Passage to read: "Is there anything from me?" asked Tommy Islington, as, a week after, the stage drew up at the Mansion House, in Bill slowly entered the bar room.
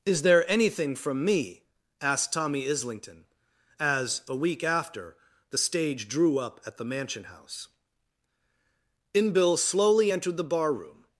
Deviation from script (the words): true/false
false